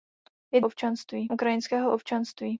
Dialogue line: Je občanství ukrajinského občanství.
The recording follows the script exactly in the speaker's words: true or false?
true